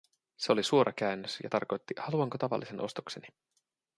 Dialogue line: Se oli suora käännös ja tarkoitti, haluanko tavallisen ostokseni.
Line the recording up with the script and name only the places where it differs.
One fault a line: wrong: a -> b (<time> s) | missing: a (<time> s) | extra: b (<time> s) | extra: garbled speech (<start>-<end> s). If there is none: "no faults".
no faults